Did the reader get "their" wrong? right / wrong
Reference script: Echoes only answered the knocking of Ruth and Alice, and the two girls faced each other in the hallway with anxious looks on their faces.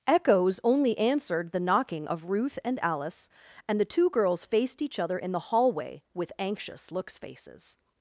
wrong